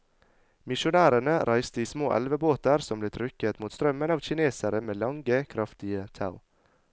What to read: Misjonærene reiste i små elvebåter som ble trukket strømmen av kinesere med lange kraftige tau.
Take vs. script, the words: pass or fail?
fail